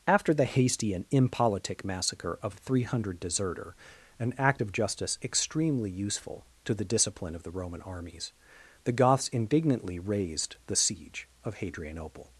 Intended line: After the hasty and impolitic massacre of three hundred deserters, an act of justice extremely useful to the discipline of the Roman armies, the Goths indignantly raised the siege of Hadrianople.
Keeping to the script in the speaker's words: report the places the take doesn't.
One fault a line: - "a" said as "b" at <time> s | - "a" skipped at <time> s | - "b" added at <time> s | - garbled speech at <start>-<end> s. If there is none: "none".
- "deserters" said as "deserter" at 3.2 s